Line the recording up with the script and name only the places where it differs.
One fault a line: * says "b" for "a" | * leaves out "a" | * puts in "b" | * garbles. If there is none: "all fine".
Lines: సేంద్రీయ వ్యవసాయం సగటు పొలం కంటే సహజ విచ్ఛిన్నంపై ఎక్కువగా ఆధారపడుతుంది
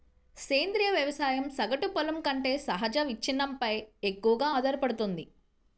all fine